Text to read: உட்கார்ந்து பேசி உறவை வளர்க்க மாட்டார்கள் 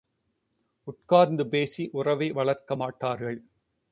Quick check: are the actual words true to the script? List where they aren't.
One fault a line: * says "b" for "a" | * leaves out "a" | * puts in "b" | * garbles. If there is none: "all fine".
all fine